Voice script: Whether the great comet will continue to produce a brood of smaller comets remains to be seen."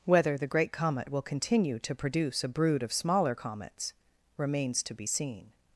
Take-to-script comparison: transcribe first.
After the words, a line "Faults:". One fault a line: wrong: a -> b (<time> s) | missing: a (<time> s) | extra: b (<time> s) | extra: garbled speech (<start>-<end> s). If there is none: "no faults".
Whether the great comet will continue to produce a brood of smaller comets remains to be seen."
Faults:
no faults